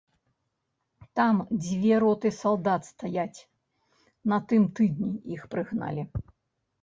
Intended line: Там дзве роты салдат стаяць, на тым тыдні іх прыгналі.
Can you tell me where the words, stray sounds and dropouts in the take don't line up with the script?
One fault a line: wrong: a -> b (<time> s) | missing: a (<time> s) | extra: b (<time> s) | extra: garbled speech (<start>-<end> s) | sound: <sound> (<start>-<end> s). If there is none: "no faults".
no faults